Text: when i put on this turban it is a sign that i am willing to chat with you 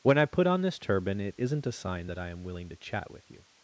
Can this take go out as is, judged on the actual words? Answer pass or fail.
fail